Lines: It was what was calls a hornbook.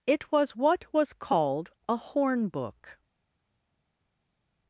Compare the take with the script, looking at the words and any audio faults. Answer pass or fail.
fail